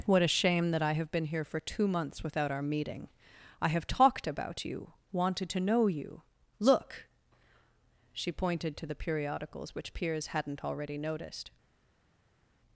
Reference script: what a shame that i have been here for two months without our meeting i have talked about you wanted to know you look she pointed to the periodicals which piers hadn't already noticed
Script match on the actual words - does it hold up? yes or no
yes